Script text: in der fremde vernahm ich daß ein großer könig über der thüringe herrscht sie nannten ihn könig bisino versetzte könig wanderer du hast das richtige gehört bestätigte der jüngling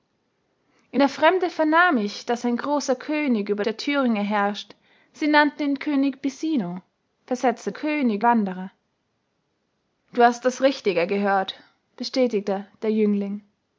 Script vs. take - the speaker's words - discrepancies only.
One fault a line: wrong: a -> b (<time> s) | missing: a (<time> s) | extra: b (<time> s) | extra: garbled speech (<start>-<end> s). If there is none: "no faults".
no faults